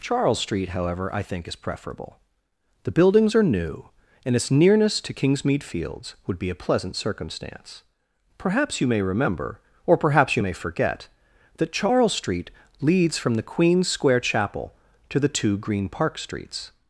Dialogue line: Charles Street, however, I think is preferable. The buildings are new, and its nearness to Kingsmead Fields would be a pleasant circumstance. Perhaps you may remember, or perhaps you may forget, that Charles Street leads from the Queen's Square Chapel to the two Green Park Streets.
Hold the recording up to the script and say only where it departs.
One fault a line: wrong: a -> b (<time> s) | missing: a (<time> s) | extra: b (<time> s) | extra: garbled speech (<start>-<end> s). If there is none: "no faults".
no faults